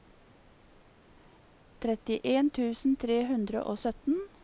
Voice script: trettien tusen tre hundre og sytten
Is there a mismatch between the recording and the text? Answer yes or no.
no